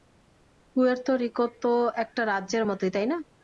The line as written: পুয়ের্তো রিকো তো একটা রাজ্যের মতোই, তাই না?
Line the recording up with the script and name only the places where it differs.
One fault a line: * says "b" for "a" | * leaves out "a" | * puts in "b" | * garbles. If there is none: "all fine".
all fine